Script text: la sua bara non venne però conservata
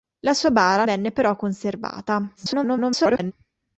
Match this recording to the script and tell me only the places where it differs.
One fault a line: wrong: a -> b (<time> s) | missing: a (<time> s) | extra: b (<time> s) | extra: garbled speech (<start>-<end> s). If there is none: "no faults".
missing: non (0.9 s)
extra: garbled speech (2.4-3.3 s)